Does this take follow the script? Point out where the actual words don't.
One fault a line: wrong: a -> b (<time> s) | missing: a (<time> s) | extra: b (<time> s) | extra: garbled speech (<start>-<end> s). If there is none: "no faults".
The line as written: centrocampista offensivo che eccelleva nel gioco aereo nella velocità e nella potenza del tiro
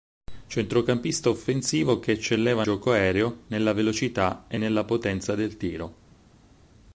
missing: nel (2.6 s)